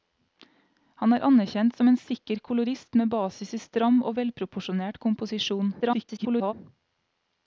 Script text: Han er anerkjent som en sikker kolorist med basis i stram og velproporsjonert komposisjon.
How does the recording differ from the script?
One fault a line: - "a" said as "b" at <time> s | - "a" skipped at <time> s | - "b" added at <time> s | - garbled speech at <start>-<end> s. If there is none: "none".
- garbled speech at 5.8-6.5 s